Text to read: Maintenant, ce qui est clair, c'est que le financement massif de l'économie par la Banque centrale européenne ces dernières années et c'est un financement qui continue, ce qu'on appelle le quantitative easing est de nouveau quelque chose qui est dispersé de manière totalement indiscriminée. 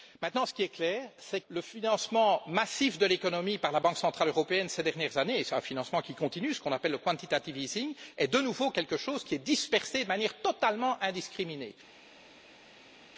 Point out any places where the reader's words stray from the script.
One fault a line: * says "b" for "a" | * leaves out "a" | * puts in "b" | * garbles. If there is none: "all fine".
* leaves out "que"